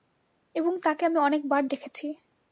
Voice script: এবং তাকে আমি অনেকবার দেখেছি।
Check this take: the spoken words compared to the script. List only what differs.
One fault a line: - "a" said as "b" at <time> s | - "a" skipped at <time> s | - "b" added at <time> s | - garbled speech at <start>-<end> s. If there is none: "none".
none